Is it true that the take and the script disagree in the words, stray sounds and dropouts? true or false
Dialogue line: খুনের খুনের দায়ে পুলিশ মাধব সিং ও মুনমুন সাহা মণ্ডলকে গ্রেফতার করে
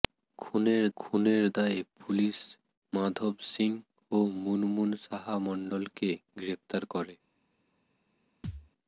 true